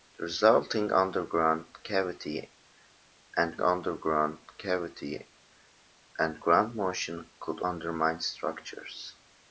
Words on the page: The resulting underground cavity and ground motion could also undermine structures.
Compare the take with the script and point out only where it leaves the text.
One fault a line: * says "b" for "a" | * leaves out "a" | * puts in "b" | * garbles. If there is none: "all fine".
* puts in "underground cavity and"
* leaves out "also"